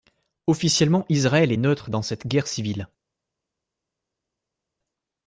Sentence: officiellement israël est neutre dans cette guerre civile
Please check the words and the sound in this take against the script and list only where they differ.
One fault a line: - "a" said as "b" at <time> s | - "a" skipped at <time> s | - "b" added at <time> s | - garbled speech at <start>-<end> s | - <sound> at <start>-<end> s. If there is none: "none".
none